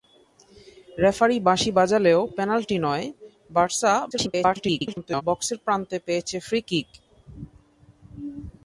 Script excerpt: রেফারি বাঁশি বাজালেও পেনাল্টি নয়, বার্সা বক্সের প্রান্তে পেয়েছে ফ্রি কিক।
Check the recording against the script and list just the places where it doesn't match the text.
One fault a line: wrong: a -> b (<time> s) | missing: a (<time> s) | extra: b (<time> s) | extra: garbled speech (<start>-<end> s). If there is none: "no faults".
extra: garbled speech (4.1-5.2 s)